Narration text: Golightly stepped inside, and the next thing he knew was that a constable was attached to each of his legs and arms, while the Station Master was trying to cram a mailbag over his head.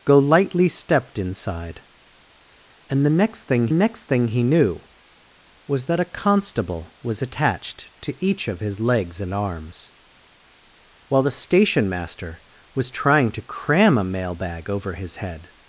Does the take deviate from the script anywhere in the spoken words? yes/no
yes